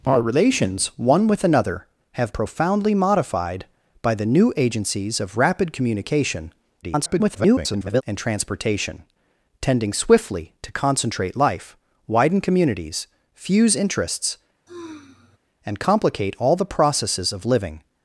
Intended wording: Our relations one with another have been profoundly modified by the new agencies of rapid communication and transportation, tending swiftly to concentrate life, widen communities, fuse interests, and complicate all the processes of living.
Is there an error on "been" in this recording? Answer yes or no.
yes